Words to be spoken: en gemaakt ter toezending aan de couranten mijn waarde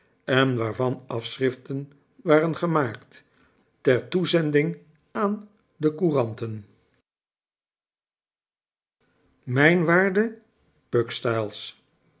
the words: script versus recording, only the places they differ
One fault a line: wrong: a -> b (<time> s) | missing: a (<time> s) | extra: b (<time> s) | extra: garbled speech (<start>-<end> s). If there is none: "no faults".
extra: waarvan afschriften waren (0.6 s)